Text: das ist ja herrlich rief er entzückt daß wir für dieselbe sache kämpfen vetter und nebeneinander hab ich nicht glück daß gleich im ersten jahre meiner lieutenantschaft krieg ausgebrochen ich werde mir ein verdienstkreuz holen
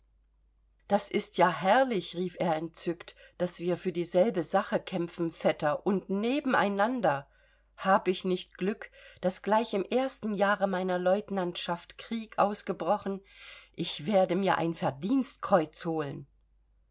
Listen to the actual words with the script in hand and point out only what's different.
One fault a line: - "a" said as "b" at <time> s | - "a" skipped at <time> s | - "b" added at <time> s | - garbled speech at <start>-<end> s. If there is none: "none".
none